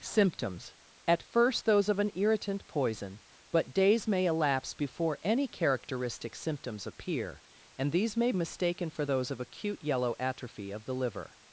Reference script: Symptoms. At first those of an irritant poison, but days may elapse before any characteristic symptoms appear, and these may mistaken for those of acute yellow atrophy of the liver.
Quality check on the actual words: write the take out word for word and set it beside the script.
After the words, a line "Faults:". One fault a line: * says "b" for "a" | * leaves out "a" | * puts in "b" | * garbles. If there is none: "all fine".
Symptoms. At first those of an irritant poison, but days may elapse before any characteristic symptoms appear, and these may mistaken for those of acute yellow atrophy of the liver.
Faults:
all fine